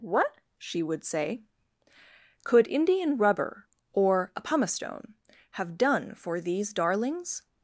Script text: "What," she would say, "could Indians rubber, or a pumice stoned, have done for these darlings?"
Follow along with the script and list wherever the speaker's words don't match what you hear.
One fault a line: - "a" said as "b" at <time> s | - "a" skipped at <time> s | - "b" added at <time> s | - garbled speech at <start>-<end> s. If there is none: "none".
- "Indians" said as "Indian" at 2.7 s
- "stoned" said as "stone" at 4.7 s